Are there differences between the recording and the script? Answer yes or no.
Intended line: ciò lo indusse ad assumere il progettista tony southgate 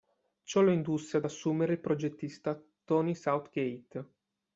no